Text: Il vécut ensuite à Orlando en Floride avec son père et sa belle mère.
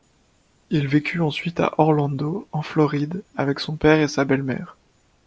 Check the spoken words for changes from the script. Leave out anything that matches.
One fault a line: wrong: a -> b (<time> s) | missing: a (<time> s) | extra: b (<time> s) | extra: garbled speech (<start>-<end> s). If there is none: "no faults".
no faults